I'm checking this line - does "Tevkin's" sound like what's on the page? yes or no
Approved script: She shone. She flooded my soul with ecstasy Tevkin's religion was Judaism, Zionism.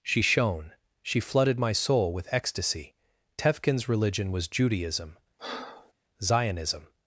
yes